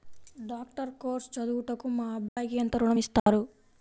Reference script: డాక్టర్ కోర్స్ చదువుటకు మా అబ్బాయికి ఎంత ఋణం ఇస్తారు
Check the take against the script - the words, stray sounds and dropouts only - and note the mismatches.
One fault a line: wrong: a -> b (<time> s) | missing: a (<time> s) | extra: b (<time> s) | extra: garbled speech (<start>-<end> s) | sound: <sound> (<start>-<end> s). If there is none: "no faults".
sound: dropout (2.3-2.4 s)
sound: dropout (3.2-3.3 s)